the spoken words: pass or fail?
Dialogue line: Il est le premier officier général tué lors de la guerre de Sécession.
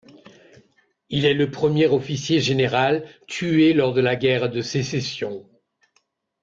pass